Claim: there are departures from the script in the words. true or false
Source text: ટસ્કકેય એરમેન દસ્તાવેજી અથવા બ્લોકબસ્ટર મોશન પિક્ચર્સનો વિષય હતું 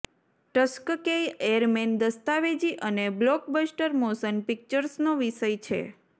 true